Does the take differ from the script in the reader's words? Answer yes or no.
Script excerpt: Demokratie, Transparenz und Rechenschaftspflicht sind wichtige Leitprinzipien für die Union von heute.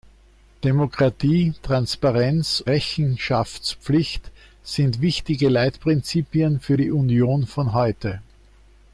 yes